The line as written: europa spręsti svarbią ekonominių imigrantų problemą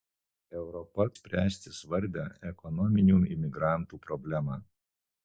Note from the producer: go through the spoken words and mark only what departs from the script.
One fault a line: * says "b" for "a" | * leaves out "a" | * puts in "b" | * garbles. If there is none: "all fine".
all fine